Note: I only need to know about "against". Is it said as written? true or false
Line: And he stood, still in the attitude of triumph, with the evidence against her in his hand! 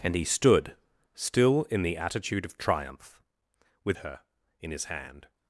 false